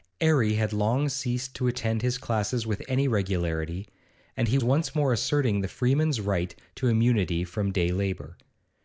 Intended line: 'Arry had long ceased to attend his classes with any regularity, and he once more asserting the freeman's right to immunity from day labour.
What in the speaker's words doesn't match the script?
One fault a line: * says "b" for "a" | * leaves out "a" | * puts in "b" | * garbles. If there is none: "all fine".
all fine